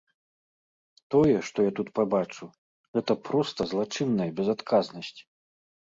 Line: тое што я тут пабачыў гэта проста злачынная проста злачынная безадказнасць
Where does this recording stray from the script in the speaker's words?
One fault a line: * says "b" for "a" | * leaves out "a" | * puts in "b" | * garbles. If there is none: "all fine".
* leaves out "проста злачынная"